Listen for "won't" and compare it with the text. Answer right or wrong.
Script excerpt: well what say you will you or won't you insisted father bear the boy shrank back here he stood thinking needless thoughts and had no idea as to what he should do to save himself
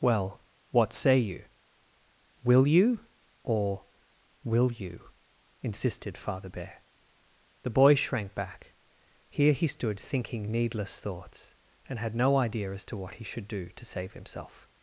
wrong